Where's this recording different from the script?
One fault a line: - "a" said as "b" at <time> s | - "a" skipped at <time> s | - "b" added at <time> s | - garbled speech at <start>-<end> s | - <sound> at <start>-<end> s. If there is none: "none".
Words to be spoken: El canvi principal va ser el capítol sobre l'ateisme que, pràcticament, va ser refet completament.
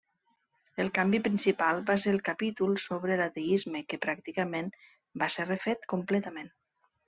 none